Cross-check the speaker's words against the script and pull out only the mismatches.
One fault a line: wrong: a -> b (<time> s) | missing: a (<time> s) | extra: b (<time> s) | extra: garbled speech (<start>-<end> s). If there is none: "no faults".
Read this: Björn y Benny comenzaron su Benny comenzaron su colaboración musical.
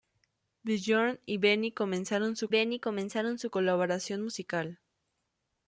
no faults